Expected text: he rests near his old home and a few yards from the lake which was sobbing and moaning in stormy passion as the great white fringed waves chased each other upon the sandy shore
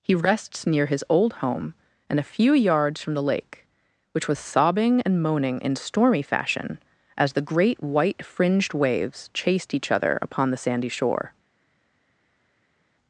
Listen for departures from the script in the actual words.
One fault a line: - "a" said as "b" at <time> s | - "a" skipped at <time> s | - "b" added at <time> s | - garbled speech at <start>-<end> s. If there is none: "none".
- "passion" said as "fashion" at 6.2 s